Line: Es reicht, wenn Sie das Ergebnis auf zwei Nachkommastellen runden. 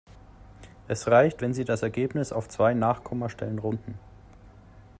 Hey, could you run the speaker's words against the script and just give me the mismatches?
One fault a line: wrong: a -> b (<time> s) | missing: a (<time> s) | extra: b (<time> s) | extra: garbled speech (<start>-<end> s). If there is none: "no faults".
no faults